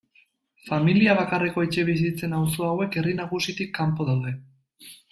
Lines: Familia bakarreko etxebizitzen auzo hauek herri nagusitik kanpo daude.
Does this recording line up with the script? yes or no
yes